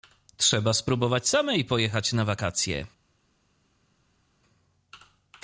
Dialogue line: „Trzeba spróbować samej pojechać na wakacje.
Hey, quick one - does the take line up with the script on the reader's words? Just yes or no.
yes